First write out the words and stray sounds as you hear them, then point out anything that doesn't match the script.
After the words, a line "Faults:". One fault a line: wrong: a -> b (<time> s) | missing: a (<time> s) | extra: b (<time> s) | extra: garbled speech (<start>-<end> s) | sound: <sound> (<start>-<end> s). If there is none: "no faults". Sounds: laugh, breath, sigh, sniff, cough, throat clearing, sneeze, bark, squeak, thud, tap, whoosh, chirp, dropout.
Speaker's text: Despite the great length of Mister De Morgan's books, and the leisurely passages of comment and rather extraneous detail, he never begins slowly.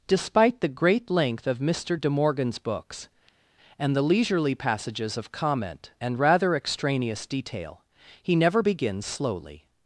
Despite the great length of Mister De Morgan's books, and the leisurely passages of comment and rather extraneous detail, he never begins slowly.
Faults:
no faults